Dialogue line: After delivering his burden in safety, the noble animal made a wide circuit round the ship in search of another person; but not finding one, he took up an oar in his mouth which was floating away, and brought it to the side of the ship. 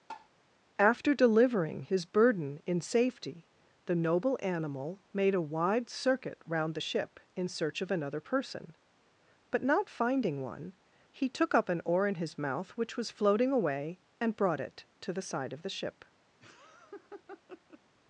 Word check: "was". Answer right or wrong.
right